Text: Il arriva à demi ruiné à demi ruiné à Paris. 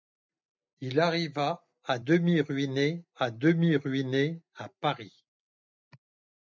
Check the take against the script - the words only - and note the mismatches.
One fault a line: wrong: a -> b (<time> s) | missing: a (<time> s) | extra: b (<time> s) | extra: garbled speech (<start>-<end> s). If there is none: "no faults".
no faults